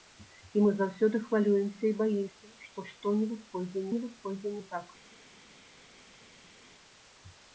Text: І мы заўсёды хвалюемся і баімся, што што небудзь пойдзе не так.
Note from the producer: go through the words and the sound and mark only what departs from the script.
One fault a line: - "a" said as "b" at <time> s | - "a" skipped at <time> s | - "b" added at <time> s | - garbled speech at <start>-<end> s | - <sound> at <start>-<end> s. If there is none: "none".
- "небудзь пойдзе" added at 3.9 s